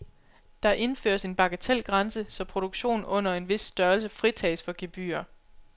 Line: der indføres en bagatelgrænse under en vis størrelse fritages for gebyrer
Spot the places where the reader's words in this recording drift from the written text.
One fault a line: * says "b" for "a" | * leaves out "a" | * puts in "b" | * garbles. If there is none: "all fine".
* puts in "så produktion"